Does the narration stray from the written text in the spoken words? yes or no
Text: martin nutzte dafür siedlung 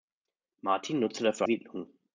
no